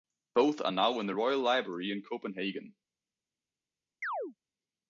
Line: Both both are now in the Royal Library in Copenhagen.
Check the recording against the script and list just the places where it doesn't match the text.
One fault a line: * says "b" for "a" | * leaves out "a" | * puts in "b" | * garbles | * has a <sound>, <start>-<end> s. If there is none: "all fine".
* leaves out "both"
* has a chirp, 4.0-4.3 s